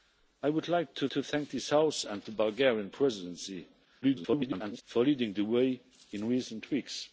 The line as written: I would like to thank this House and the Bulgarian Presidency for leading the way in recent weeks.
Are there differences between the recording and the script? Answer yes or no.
yes